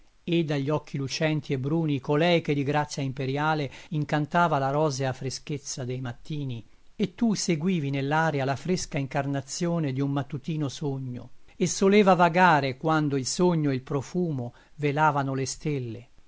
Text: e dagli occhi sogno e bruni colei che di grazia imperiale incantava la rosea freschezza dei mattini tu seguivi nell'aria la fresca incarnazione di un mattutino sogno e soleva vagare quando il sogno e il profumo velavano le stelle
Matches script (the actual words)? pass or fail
fail